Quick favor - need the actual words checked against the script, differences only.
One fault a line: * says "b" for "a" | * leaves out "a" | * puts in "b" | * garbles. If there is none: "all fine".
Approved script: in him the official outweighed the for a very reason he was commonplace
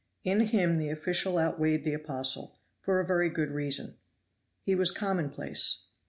* puts in "apostle"
* puts in "good"